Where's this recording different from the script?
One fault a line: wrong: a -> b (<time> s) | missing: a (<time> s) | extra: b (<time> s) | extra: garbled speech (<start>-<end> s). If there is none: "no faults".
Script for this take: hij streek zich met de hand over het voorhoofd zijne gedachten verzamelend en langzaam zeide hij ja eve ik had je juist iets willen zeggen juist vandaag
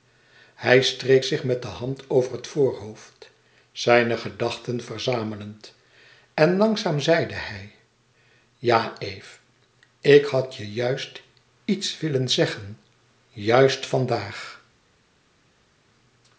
no faults